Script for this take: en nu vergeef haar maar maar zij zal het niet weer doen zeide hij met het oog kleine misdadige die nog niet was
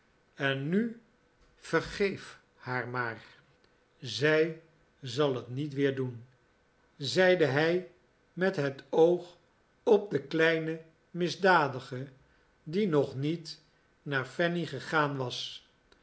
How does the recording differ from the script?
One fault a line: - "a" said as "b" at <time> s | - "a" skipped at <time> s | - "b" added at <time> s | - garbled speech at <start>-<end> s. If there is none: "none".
- "maar" skipped at 3.2 s
- "op de" added at 9.8 s
- "naar fanny gegaan" added at 14.0 s